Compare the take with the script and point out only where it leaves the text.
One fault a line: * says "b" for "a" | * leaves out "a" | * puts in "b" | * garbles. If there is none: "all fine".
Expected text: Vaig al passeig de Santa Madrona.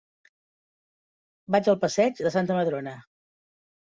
all fine